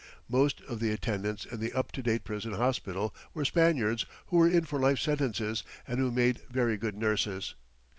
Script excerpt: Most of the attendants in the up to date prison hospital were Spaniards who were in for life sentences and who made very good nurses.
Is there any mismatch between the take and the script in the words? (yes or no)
no